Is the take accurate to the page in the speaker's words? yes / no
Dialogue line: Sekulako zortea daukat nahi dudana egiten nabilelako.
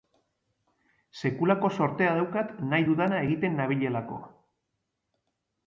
yes